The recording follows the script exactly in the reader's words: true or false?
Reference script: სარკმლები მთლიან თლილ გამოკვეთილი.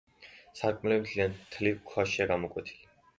false